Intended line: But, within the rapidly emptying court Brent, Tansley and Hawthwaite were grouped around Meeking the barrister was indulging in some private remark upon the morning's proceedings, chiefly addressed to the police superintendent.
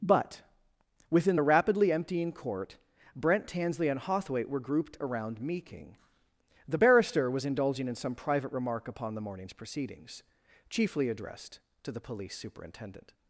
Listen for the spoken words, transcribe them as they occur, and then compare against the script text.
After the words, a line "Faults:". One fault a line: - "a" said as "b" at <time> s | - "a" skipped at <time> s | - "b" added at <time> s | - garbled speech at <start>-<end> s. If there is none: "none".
But, within the rapidly emptying court Brent, Tansley and Hawthwaite were grouped around Meeking the barrister was indulging in some private remark upon the morning's proceedings, chiefly addressed to the police superintendent.
Faults:
none